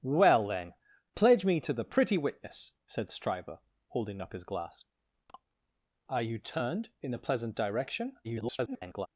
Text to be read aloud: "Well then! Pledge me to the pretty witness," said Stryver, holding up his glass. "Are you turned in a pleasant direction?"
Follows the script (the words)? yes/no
no